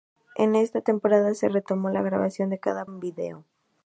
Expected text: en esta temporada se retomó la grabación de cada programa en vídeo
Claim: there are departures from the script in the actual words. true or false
true